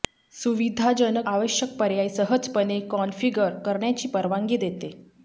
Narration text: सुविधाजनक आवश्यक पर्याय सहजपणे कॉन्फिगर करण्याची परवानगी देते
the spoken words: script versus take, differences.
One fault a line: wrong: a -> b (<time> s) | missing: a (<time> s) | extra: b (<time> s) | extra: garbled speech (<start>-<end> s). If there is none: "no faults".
no faults